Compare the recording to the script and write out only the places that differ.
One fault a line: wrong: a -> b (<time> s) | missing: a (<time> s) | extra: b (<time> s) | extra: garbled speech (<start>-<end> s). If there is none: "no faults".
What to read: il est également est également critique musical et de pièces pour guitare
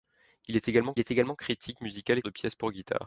no faults